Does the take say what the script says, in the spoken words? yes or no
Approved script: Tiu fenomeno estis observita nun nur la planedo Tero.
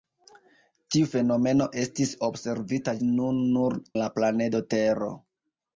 yes